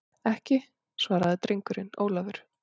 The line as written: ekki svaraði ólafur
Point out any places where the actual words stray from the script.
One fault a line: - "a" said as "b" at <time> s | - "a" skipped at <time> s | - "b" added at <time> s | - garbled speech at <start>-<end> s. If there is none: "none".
- "drengurinn" added at 1.5 s